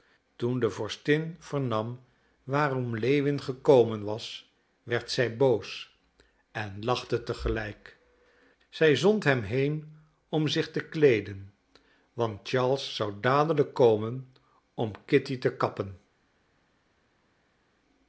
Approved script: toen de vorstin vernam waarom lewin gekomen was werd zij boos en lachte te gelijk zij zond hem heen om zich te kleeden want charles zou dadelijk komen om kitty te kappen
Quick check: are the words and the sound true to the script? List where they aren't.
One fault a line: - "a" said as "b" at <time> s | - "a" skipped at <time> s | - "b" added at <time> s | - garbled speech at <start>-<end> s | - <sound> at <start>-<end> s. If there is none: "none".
none